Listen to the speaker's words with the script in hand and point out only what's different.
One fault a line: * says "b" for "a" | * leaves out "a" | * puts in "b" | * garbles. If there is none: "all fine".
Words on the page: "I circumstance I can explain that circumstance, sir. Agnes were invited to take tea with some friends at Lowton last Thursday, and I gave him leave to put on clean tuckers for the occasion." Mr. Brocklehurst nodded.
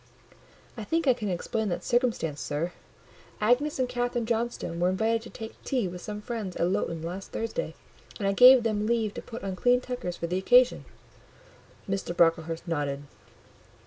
* says "think" for "circumstance"
* puts in "and Catherine Johnstone"
* says "them" for "him"